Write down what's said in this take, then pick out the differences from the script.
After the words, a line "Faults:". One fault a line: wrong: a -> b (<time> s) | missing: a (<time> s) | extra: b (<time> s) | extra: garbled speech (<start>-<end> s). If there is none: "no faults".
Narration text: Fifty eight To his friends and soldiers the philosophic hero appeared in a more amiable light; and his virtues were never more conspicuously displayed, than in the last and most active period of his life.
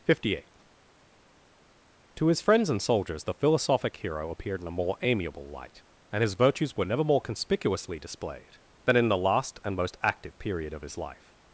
Fifty eight To his friends and soldiers the philosophic hero appeared in a more amiable light; and his virtues were never more conspicuously displayed, than in the last and most active period of his life.
Faults:
no faults